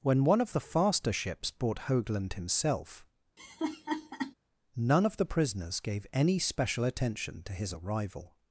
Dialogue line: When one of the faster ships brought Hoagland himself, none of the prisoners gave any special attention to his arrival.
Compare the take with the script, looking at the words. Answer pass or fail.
pass